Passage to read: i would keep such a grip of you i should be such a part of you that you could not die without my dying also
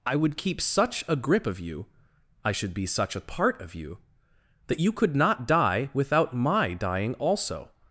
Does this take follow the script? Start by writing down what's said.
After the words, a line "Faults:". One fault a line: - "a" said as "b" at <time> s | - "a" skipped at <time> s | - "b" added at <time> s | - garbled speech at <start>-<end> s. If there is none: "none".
i would keep such a grip of you i should be such a part of you that you could not die without my dying also
Faults:
none